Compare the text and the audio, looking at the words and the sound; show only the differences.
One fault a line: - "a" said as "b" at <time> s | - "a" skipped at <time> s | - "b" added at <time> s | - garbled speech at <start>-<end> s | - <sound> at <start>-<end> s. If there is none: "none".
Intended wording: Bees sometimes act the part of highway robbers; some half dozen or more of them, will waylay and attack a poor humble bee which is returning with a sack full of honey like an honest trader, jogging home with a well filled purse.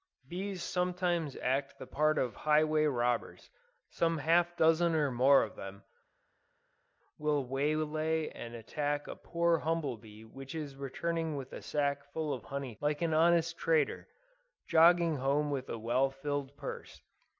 none